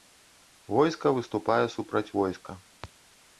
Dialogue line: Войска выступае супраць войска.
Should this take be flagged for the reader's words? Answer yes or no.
no